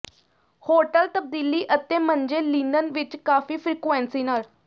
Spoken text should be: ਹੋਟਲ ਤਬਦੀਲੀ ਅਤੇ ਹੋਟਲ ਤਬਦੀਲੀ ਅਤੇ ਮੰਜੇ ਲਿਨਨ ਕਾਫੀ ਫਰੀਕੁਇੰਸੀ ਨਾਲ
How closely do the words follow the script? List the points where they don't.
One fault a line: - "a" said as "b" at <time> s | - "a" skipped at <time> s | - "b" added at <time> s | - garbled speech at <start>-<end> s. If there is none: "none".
- "ਹੋਟਲ ਤਬਦੀਲੀ ਅਤੇ" skipped at 2.0 s
- "ਵਿੱਚ" added at 2.9 s